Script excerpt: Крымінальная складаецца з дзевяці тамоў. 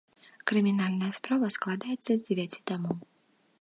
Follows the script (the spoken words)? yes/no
no